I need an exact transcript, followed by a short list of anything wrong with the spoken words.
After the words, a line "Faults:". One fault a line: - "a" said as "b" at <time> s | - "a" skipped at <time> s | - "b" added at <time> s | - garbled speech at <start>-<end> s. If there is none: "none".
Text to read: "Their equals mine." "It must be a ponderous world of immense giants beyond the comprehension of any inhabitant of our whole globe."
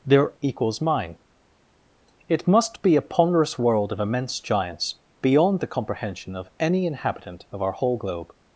"Their equals mine." "It must be a ponderous world of immense giants beyond the comprehension of any inhabitant of our whole globe."
Faults:
none